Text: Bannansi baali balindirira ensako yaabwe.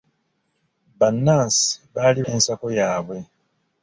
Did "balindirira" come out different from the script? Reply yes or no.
yes